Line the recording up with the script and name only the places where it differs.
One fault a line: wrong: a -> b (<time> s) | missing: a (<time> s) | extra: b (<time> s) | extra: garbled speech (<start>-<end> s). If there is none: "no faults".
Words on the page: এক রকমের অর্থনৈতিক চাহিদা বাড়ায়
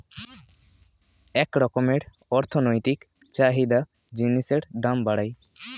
extra: জিনিসের দাম (4.1 s)